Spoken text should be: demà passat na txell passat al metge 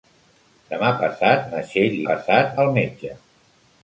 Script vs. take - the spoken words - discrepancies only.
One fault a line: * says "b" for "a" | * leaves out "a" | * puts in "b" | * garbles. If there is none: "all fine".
all fine